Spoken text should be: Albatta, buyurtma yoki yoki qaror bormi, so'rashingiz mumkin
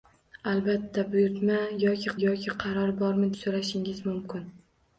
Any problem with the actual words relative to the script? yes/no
no